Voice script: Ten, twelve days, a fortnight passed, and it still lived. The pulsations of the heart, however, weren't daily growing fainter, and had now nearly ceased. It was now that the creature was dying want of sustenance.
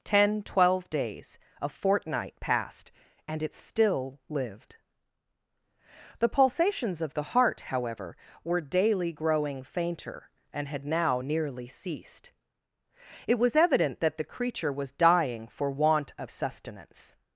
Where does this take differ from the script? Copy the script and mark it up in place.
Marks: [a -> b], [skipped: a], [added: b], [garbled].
Ten, twelve days, a fortnight passed, and it still lived. The pulsations of the heart, however, [weren't -> were] daily growing fainter, and had now nearly ceased. It was [now -> evident] that the creature was dying [added: for] want of sustenance.